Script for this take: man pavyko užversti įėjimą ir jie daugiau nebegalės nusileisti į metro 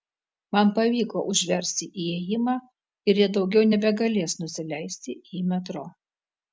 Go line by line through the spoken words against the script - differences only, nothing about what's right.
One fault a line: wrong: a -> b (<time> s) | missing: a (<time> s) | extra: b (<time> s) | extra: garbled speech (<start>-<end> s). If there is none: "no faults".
no faults